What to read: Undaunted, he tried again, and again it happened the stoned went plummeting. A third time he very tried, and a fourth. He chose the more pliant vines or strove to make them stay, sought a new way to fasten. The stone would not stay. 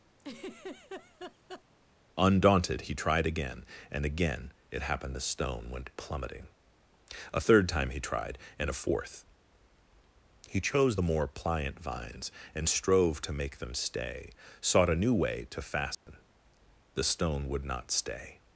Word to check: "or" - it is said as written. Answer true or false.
false